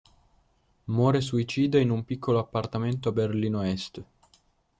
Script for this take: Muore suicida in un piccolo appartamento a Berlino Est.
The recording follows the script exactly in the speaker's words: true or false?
true